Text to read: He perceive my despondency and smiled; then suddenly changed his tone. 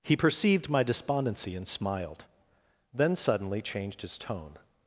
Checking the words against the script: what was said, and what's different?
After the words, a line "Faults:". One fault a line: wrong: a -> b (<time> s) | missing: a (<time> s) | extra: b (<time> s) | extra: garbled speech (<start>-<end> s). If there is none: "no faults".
He perceived my despondency and smiled; then suddenly changed his tone.
Faults:
wrong: perceive -> perceived (0.1 s)